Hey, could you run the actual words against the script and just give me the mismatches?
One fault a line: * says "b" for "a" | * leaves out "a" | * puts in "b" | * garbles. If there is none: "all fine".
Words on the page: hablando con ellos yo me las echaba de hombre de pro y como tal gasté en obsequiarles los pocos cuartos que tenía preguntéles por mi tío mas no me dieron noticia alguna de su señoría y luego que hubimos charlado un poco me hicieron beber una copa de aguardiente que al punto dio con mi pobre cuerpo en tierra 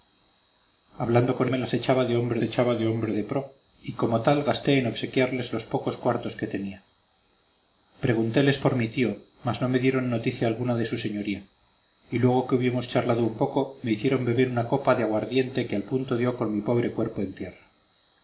* says "me las echaba de hombre" for "ellos yo me las"